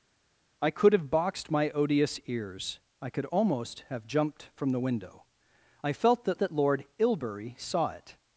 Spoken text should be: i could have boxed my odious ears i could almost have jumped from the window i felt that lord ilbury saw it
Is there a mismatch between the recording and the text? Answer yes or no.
yes